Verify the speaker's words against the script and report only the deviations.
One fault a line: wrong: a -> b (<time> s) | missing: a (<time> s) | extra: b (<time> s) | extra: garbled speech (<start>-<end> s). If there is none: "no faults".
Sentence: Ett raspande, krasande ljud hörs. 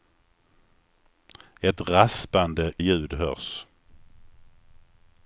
missing: krasande (2.7 s)